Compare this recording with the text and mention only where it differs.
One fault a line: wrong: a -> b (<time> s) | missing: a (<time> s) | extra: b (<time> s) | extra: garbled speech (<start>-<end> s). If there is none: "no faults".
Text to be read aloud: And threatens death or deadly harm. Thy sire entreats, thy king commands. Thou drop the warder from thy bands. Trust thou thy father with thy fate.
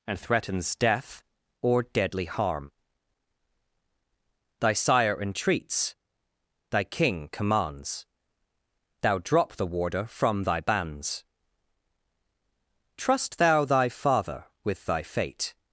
no faults